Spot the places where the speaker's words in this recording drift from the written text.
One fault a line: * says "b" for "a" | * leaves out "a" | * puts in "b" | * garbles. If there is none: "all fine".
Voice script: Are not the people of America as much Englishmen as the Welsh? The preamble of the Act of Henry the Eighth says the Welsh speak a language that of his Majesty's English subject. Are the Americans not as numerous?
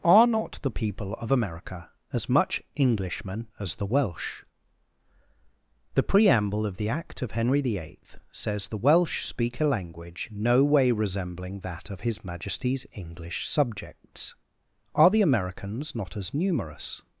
* puts in "no way resembling"
* says "subjects" for "subject"